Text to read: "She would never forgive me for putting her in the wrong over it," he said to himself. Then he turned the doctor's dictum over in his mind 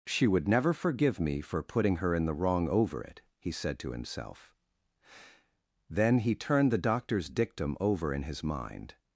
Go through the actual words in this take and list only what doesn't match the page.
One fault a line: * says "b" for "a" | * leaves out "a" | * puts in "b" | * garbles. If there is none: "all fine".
all fine